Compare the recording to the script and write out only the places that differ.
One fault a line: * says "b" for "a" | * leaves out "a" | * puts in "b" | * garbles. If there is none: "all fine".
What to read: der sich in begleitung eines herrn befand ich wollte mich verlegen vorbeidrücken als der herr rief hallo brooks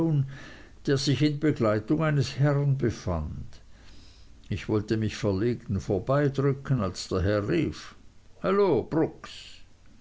all fine